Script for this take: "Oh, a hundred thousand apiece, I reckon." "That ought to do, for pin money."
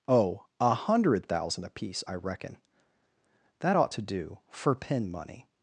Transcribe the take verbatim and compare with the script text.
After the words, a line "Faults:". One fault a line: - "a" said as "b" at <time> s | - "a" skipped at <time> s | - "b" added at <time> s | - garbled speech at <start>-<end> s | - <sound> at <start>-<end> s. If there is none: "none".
"Oh, a hundred thousand apiece, I reckon." "That ought to do, for pin money."
Faults:
none